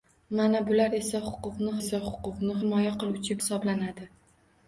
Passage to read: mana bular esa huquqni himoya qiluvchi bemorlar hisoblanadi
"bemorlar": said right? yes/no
no